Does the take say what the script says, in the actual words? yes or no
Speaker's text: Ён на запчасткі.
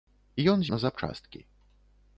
yes